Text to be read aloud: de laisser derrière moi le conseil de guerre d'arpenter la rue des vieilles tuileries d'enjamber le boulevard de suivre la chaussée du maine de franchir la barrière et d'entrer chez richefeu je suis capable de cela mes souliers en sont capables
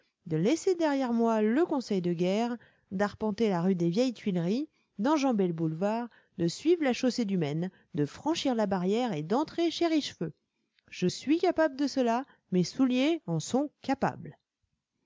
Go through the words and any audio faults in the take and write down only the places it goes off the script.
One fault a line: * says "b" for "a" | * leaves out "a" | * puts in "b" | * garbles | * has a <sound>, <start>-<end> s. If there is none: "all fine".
all fine